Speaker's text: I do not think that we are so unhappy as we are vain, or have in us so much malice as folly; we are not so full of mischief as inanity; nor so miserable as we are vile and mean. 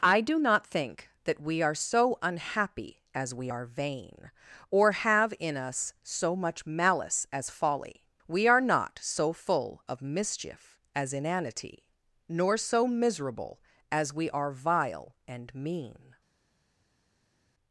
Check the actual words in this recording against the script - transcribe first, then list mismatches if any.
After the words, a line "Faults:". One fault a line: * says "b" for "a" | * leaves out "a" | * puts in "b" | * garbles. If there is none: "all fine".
I do not think that we are so unhappy as we are vain, or have in us so much malice as folly; we are not so full of mischief as inanity; nor so miserable as we are vile and mean.
Faults:
all fine